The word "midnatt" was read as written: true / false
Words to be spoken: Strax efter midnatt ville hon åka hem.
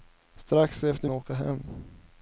false